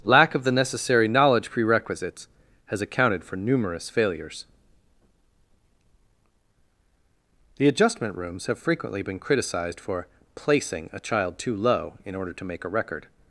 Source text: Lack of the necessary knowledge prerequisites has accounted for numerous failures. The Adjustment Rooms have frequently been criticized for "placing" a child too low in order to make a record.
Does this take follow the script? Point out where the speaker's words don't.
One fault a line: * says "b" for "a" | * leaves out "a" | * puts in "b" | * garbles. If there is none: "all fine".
all fine